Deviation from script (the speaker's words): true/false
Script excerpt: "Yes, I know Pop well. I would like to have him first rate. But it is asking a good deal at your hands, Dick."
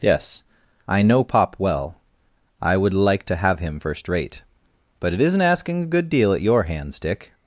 true